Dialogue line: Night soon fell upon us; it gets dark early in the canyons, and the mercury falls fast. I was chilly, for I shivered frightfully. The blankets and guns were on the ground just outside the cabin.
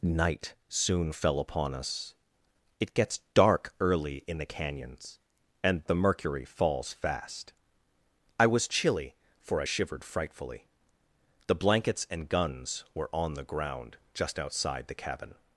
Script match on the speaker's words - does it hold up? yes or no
yes